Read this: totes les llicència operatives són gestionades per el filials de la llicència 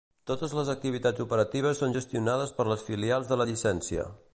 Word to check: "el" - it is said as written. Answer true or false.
false